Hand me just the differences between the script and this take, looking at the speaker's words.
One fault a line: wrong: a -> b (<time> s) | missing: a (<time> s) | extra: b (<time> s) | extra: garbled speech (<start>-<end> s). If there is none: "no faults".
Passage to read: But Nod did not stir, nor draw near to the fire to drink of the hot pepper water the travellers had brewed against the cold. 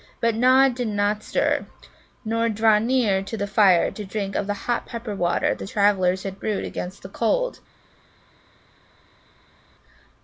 no faults